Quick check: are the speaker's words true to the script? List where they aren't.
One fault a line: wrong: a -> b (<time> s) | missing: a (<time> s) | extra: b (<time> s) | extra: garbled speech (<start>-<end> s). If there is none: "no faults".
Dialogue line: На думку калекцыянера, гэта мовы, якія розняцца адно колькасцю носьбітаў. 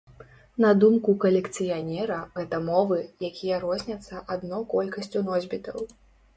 no faults